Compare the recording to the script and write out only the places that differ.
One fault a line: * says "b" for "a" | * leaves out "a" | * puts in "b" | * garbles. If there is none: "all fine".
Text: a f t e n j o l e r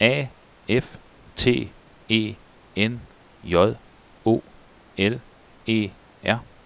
all fine